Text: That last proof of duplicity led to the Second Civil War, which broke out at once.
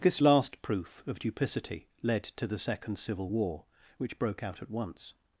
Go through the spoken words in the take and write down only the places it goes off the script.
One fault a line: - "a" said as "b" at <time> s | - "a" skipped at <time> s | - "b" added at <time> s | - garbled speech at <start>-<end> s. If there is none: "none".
- "That" said as "This" at 0.0 s